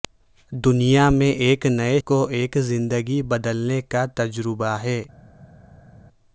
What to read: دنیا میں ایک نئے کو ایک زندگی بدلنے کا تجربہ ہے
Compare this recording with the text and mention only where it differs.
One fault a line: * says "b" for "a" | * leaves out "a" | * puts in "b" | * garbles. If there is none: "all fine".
all fine